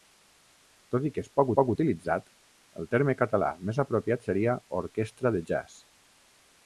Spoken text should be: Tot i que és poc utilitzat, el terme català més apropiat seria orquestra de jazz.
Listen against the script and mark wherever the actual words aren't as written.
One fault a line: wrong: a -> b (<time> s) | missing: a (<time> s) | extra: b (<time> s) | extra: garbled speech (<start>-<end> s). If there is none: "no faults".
extra: poc (1.6 s)